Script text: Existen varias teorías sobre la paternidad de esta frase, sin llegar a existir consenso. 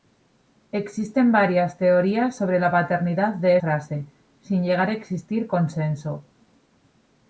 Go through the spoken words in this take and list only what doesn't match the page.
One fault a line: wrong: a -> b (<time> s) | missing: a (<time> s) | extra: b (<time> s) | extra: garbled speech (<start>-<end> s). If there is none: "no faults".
missing: esta (3.6 s)